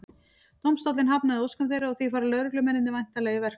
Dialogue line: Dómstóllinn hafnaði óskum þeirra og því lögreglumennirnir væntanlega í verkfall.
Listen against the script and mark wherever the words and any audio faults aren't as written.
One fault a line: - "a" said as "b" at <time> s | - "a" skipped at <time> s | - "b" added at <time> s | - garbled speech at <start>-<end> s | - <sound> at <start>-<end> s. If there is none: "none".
- "fara" added at 2.1 s